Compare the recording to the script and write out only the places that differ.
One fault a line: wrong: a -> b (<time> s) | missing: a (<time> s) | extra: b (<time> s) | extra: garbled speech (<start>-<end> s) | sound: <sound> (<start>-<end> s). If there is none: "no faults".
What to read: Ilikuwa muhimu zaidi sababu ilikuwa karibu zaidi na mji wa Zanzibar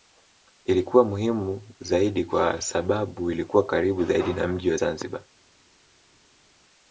extra: kwa (2.2 s)